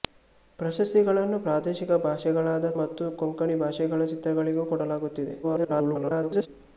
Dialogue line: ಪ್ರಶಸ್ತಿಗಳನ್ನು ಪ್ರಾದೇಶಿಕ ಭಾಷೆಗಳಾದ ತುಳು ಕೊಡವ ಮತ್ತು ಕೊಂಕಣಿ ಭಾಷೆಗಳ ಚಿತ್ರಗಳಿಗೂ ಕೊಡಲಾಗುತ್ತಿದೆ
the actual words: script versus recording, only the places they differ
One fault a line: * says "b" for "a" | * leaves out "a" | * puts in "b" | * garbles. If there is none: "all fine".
* leaves out "ತುಳು ಕೊಡವ"
* garbles